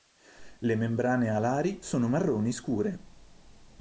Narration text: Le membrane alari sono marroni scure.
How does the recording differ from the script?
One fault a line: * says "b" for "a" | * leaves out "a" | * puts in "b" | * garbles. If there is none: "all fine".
all fine